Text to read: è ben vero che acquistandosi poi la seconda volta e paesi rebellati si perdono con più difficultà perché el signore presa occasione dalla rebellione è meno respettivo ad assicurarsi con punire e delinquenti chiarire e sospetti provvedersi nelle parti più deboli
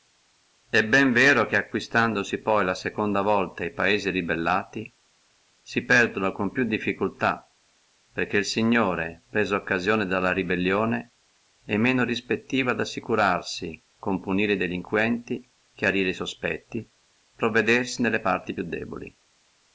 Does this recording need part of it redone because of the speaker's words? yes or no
no